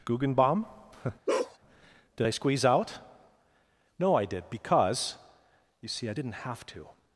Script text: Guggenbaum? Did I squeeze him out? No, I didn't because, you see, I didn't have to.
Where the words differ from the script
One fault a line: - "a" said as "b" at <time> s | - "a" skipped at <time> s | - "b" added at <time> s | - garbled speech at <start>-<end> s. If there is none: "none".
- "him" skipped at 2.7 s
- "didn't" said as "did" at 4.3 s